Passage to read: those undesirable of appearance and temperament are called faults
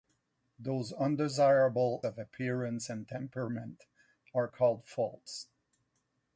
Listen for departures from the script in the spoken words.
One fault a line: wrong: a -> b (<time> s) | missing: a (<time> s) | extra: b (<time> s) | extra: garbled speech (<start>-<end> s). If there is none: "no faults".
no faults